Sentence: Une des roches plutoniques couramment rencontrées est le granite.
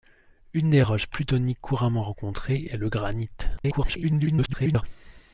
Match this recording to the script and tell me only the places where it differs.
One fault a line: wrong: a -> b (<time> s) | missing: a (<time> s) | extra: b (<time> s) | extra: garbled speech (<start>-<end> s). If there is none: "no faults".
extra: garbled speech (3.6-4.8 s)